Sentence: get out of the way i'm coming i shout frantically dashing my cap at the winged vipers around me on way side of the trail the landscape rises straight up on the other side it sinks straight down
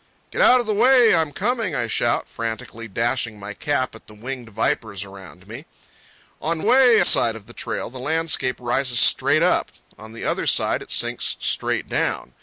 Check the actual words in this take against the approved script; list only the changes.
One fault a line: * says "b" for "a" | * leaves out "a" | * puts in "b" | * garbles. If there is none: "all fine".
all fine